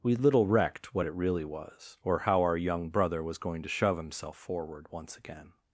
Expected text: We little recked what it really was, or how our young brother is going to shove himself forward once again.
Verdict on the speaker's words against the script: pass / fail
fail